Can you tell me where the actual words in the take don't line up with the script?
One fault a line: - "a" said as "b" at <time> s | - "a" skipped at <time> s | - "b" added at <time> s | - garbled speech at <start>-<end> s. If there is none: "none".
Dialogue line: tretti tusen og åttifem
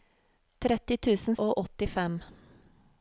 none